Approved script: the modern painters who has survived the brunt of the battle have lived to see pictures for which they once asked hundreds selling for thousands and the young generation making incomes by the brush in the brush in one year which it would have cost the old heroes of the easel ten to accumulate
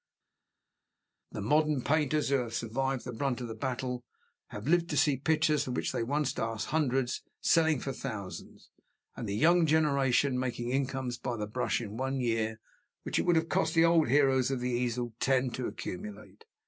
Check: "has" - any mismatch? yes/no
yes